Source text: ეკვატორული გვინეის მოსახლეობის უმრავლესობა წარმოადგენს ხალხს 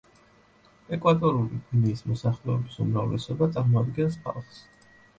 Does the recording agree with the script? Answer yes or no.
yes